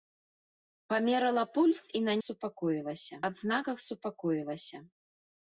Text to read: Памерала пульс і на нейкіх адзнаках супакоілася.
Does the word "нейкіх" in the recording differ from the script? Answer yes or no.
yes